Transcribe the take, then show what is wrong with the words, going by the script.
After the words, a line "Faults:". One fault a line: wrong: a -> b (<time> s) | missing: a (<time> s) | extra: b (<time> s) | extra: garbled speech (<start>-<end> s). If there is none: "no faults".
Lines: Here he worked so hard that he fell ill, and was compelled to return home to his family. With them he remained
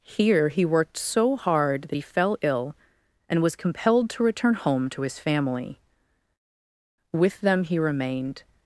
Here he worked so hard that he fell ill, and was compelled to return home to his family. With them he remained
Faults:
no faults